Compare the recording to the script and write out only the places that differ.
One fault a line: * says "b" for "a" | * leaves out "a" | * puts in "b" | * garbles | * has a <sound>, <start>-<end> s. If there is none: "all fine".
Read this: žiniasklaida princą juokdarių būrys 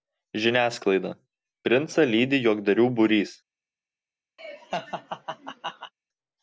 * puts in "lydi"
* has a laugh, 4.4-5.9 s